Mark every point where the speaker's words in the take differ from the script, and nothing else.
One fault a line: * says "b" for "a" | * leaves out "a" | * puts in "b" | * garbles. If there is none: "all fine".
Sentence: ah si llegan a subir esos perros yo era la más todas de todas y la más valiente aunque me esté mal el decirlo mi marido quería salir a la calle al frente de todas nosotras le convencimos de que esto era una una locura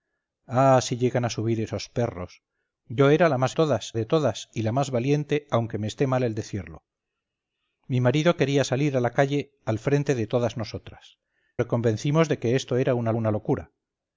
all fine